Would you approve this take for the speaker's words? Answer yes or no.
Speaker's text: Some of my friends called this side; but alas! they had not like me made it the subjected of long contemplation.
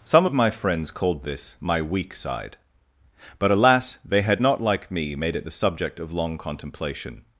no